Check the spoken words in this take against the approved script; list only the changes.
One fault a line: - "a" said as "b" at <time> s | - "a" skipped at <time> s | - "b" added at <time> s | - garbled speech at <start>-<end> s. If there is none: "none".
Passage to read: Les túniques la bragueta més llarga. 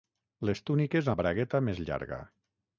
none